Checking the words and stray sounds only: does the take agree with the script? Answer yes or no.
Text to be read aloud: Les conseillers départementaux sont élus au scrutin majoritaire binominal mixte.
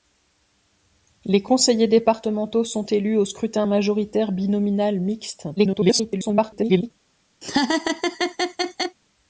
no